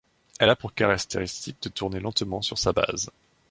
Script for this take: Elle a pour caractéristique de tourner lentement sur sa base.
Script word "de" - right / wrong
right